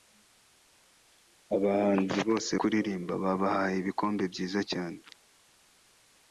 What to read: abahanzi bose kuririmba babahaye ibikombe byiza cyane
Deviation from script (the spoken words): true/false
false